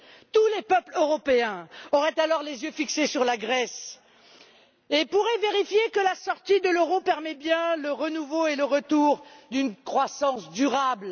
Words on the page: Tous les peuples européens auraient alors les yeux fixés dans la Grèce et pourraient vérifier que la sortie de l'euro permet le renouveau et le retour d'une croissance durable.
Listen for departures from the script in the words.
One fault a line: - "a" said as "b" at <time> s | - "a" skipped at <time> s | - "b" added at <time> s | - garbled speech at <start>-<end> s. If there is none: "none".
- "dans" said as "sur" at 3.1 s
- "bien" added at 7.3 s